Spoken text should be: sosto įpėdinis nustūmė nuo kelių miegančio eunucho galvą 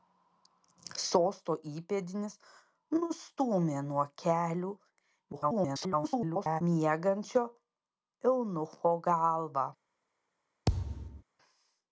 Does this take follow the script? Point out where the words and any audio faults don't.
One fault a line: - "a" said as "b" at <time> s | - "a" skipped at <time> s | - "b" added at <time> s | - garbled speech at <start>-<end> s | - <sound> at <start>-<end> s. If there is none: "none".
- garbled speech at 5.3-6.6 s
- thud at 10.7-11.2 s